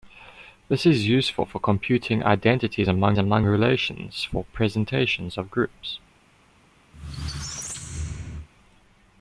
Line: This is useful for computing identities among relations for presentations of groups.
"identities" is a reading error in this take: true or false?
false